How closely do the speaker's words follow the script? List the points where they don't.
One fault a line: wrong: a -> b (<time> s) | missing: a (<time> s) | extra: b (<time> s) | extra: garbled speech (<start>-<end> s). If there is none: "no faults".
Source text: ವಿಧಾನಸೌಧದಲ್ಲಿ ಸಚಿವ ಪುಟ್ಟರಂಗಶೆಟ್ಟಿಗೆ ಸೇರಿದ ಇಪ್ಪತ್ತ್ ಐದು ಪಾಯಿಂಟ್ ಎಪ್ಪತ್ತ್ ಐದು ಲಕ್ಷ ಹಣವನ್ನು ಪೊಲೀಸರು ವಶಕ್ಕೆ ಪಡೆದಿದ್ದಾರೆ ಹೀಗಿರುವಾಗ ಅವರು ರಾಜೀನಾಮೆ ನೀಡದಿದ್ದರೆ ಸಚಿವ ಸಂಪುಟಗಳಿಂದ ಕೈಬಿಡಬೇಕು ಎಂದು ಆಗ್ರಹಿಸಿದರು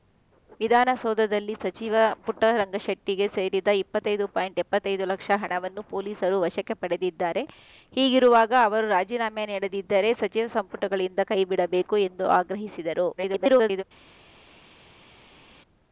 extra: garbled speech (13.2-13.8 s)